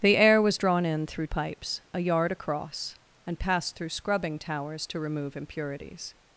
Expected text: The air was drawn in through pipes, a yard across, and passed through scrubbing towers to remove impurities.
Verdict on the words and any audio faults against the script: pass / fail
pass